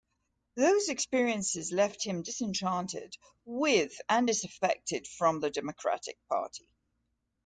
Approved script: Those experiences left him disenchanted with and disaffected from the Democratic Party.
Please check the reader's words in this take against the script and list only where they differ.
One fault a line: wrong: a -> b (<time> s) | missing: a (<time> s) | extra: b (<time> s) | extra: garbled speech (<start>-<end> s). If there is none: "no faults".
no faults